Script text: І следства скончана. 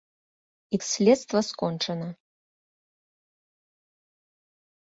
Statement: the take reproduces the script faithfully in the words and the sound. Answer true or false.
true